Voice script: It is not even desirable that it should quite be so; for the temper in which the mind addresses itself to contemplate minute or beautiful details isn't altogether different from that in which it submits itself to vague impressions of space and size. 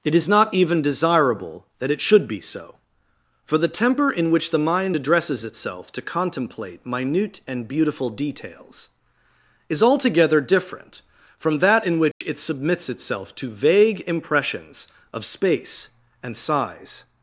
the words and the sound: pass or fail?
fail